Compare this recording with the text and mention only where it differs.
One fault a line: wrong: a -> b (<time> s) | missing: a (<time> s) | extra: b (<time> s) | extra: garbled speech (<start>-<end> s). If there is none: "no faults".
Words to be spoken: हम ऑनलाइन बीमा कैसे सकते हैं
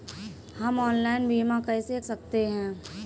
no faults